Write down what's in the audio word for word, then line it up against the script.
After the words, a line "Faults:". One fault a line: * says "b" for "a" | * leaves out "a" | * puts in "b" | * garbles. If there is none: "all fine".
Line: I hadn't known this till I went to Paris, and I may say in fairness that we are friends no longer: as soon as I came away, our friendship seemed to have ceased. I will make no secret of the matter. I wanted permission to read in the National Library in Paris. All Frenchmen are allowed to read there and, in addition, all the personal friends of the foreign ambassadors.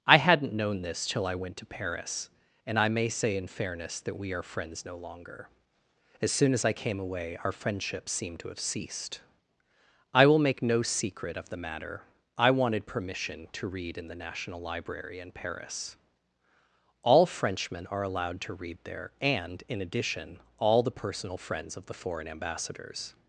I hadn't known this till I went to Paris, and I may say in fairness that we are friends no longer: as soon as I came away, our friendship seemed to have ceased. I will make no secret of the matter. I wanted permission to read in the National Library in Paris. All Frenchmen are allowed to read there and, in addition, all the personal friends of the foreign ambassadors.
Faults:
all fine